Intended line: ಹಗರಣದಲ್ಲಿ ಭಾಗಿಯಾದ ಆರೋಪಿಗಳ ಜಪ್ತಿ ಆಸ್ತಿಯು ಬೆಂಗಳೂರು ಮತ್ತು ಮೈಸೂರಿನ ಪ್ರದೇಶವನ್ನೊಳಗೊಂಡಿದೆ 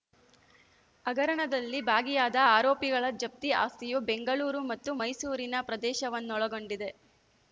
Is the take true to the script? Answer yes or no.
yes